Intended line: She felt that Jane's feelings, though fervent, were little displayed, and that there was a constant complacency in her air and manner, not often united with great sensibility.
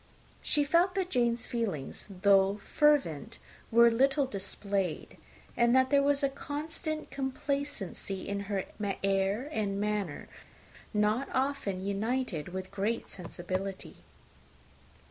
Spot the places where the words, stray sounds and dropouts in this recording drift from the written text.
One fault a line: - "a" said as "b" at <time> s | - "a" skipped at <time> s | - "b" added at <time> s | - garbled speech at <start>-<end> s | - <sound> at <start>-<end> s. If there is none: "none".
none